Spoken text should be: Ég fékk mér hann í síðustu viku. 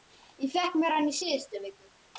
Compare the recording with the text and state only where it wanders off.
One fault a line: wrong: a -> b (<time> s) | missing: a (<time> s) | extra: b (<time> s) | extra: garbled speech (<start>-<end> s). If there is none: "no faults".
no faults